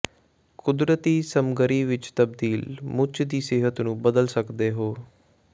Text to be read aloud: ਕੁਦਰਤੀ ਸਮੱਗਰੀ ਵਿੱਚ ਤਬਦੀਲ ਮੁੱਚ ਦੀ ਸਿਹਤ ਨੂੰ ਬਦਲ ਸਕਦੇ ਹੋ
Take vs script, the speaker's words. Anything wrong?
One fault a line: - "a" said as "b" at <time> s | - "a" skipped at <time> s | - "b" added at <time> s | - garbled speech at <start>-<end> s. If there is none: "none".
none